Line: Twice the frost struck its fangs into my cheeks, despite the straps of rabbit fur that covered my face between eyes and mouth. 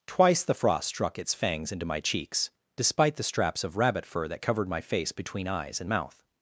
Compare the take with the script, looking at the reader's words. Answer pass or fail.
pass